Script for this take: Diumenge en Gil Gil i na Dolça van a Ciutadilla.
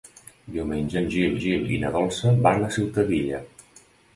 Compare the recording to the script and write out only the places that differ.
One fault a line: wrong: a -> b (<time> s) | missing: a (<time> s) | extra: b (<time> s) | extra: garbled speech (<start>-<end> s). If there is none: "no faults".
no faults